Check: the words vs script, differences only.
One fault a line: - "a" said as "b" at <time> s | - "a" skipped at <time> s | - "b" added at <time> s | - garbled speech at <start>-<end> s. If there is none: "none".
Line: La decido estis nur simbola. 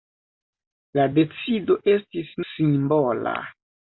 - "nur" skipped at 2.3 s